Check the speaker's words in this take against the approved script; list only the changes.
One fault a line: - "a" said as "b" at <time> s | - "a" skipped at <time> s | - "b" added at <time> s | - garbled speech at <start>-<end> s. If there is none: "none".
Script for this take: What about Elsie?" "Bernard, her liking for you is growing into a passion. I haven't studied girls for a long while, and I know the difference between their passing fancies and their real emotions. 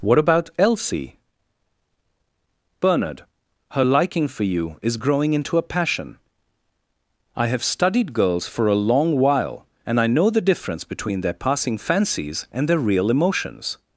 - "haven't" said as "have" at 7.5 s